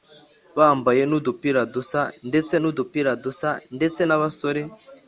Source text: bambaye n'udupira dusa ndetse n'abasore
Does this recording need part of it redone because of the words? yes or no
yes